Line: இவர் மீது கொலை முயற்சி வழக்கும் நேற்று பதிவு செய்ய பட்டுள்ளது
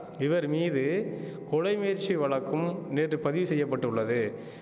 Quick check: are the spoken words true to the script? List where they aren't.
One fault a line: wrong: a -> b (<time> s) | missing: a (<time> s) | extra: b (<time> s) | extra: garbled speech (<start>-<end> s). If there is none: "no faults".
no faults